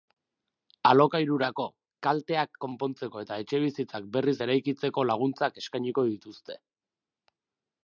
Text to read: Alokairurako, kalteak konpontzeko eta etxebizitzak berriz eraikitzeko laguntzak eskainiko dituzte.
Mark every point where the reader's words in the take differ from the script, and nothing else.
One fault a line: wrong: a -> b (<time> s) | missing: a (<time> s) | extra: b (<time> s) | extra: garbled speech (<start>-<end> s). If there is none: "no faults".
no faults